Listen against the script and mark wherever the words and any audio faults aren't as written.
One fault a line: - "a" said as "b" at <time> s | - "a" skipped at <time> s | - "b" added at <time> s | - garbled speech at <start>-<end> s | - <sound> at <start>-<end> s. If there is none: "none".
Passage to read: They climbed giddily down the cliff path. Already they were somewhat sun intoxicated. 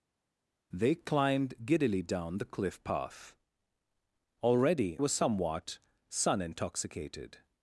- "they" skipped at 5.0 s